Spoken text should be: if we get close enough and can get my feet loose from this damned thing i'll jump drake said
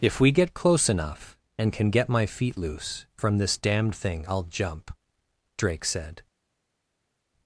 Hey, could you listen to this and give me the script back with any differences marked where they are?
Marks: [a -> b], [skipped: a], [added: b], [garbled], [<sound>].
if we get close enough and can get my feet loose from this damned thing i'll jump drake said